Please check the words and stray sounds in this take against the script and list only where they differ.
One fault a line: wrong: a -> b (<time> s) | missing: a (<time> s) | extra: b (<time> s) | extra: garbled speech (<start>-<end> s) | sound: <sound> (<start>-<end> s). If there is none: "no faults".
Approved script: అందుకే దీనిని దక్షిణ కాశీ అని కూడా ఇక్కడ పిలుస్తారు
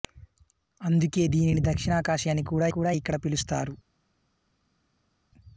extra: కూడా (2.7 s)